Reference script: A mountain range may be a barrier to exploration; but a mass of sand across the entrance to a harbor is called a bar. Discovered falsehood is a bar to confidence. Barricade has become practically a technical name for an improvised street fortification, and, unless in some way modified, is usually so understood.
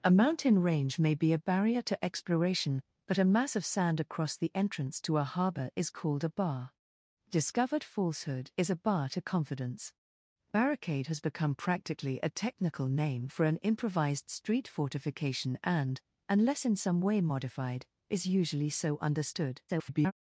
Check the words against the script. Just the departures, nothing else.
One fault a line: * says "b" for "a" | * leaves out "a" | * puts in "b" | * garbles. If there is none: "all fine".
* garbles